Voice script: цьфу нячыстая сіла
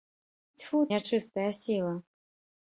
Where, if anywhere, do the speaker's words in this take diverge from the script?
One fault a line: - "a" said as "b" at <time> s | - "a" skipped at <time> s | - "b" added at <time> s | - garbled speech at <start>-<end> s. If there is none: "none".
none